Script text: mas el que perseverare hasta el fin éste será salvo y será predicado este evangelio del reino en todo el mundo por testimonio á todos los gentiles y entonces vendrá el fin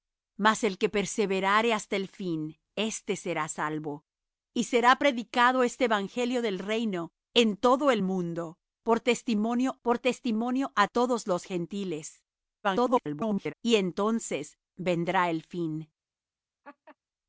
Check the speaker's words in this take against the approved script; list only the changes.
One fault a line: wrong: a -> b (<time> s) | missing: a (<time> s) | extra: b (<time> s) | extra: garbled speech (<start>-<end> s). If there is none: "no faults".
extra: por testimonio (9.8 s)
extra: garbled speech (12.6-13.5 s)